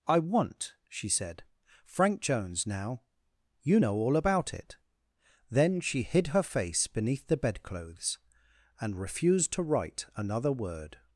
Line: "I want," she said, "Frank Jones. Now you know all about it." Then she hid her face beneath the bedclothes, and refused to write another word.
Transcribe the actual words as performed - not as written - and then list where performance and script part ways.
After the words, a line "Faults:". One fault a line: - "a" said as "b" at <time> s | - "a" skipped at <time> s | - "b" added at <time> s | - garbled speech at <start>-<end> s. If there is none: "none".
"I want," she said, "Frank Jones. Now you know all about it." Then she hid her face beneath the bedclothes, and refused to write another word.
Faults:
none